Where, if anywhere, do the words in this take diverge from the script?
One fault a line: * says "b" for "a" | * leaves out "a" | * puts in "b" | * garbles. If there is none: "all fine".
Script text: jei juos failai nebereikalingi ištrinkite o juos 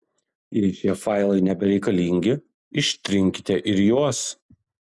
* says "šie" for "juos"
* says "ir" for "o"